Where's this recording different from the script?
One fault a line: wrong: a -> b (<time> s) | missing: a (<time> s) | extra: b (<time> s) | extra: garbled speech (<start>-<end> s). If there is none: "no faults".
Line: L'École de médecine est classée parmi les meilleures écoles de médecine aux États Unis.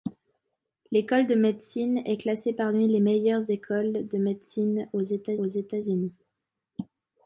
extra: aux États (5.4 s)